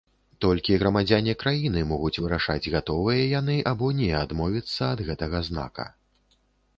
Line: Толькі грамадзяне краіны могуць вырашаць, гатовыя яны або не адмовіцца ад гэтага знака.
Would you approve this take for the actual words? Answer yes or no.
yes